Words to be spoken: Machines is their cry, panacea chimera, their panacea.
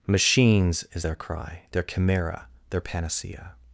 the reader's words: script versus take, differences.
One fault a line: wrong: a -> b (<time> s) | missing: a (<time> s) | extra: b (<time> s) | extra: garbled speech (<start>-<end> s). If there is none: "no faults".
wrong: panacea -> their (1.7 s)